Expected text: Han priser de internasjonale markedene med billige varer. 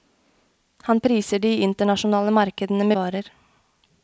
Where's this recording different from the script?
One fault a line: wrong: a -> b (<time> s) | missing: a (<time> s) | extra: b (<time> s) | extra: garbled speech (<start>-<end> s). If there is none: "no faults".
missing: med billige (2.9 s)